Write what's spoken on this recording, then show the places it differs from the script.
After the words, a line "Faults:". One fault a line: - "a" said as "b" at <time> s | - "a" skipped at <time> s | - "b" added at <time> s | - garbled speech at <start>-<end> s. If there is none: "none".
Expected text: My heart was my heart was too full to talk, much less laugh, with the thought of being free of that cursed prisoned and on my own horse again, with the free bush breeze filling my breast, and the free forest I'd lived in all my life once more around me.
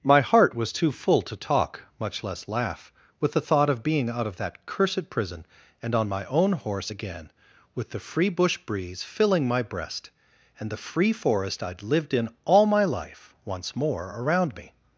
My heart was too full to talk, much less laugh, with the thought of being out of that cursed prison and on my own horse again, with the free bush breeze filling my breast, and the free forest I'd lived in all my life once more around me.
Faults:
- "my heart was" skipped at 0.7 s
- "free" said as "out" at 4.1 s
- "prisoned" said as "prison" at 5.1 s